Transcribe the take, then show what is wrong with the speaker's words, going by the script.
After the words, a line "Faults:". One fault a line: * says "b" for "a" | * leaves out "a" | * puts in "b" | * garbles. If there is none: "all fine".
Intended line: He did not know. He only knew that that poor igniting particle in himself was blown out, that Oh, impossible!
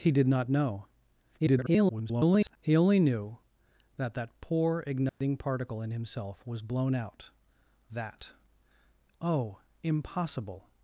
He did not know. [garbled] He only knew that that poor igniting particle in himself was blown out, that Oh, impossible!
Faults:
* garbles